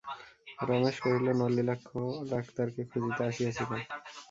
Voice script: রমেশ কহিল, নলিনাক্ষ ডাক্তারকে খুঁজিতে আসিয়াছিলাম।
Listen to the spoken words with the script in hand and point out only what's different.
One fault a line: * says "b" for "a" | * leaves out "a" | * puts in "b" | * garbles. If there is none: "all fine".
all fine